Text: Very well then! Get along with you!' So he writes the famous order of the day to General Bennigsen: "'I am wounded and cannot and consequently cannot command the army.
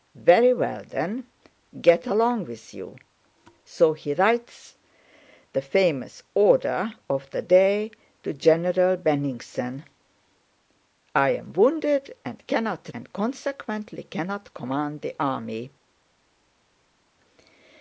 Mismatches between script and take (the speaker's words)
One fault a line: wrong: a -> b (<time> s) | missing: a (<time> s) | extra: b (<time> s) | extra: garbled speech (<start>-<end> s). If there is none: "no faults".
no faults